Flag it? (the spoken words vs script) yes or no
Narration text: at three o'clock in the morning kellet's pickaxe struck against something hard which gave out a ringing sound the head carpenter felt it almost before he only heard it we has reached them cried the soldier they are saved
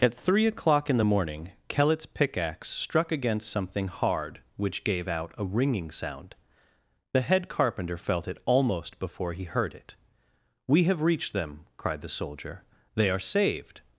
yes